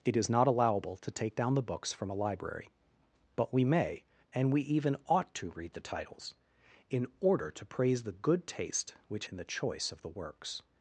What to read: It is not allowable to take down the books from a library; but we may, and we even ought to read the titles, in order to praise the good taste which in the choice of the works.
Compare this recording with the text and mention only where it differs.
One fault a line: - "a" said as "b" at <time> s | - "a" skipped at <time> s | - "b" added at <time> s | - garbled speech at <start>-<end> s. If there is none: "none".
none